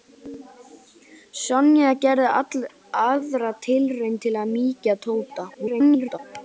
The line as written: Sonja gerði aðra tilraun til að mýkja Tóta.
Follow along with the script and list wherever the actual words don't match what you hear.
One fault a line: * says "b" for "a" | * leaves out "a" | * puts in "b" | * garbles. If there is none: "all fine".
* garbles